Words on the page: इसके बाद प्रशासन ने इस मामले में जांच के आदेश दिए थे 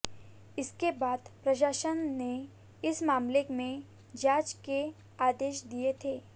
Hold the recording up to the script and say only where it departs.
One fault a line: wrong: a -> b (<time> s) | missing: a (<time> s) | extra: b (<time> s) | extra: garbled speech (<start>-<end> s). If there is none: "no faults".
no faults